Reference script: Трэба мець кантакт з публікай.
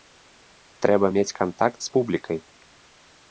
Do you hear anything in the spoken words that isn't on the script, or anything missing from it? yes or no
no